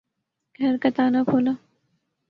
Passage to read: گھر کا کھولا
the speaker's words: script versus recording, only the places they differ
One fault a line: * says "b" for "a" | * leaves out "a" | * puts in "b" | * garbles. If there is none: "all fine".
* puts in "تالا"